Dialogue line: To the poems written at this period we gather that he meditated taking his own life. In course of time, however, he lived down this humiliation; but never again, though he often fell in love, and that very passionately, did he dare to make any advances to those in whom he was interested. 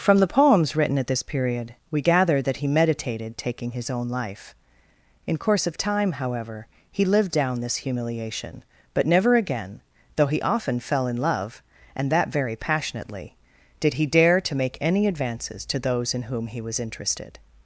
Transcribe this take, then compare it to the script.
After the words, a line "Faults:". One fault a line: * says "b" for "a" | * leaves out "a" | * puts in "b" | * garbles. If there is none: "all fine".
From the poems written at this period we gather that he meditated taking his own life. In course of time, however, he lived down this humiliation; but never again, though he often fell in love, and that very passionately, did he dare to make any advances to those in whom he was interested.
Faults:
* says "From" for "To"